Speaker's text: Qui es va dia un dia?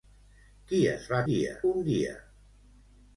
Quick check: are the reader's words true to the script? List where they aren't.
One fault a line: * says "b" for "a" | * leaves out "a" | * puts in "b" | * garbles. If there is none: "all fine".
all fine